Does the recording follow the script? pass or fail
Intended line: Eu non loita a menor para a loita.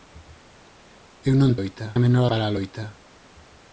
pass